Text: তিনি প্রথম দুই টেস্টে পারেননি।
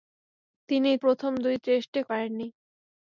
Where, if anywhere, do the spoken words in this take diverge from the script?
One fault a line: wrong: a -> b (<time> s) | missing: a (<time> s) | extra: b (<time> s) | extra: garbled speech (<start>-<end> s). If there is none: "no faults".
no faults